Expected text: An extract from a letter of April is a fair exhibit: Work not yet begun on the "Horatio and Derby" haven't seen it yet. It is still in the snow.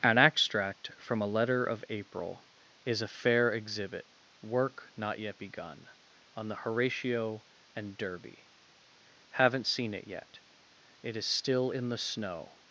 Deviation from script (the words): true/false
false